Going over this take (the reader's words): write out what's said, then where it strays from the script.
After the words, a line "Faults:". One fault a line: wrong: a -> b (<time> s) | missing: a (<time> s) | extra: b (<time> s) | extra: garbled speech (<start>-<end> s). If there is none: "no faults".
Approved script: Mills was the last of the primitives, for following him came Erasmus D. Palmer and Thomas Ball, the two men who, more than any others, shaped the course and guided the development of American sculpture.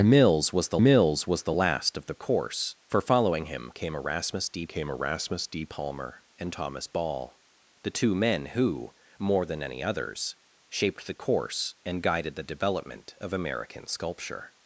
Mills was the mills was the last of the course, for following him came Erasmus D came Erasmus D. Palmer and Thomas Ball, the two men who, more than any others, shaped the course and guided the development of American sculpture.
Faults:
extra: mills was the (0.8 s)
wrong: primitives -> course (2.1 s)
extra: came Erasmus D (4.7 s)